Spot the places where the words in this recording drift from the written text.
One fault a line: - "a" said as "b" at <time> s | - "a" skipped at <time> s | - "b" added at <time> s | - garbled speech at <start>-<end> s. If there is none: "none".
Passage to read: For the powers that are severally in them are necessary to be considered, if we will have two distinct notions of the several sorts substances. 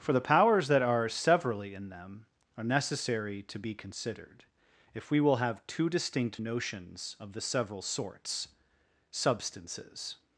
none